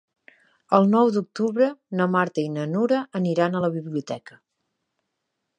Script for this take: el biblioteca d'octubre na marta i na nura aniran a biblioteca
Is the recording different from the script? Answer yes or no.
yes